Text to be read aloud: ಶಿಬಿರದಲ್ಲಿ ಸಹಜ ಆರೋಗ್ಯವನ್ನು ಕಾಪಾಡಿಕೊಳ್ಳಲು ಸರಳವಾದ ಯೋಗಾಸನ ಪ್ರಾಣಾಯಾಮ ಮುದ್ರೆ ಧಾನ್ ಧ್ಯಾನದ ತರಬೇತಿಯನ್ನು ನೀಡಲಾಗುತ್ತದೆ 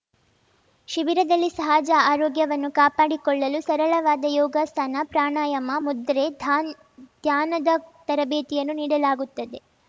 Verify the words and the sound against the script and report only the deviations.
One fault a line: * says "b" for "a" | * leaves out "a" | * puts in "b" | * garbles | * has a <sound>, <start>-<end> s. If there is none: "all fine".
all fine